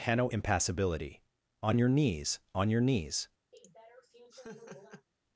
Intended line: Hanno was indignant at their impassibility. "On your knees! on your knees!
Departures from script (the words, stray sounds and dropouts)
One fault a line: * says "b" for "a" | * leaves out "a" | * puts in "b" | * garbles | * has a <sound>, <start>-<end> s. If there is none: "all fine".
* leaves out "was indignant at their"
* has a laugh, 3.5-5.1 s